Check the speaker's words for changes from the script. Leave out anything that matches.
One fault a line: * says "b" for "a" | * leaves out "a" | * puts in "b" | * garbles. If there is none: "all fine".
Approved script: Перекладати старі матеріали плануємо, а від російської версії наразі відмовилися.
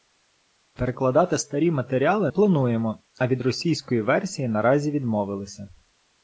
all fine